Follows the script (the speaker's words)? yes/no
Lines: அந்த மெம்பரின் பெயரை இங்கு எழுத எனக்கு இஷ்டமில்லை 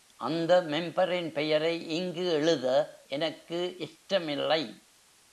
yes